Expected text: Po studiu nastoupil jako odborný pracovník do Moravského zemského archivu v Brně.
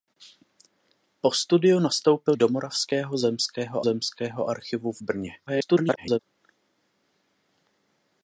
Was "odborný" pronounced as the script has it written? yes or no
no